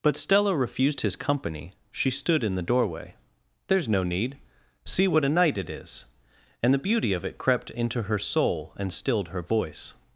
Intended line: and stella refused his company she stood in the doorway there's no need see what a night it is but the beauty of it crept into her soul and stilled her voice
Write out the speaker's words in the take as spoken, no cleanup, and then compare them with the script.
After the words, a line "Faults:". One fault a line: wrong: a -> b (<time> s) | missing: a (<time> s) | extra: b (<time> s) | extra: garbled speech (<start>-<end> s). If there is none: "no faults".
but stella refused his company she stood in the doorway there's no need see what a night it is and the beauty of it crept into her soul and stilled her voice
Faults:
wrong: and -> but (0.0 s)
wrong: but -> and (6.6 s)